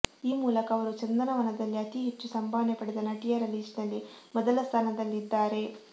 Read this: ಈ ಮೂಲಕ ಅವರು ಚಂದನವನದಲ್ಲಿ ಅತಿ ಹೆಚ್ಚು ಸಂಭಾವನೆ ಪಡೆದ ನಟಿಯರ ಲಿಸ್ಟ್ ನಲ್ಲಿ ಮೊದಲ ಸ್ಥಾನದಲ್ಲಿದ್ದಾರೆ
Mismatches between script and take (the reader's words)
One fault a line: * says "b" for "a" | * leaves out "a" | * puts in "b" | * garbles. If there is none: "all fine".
all fine